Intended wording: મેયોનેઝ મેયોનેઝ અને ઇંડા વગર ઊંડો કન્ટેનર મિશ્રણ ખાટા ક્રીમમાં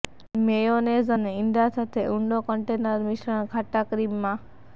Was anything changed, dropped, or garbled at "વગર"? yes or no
yes